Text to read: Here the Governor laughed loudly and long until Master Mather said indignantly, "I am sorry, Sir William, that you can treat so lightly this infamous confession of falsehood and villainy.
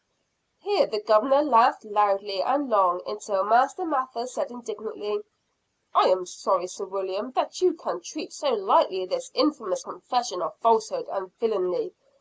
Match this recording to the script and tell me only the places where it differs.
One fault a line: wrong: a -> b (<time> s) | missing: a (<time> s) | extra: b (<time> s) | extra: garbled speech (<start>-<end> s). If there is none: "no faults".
no faults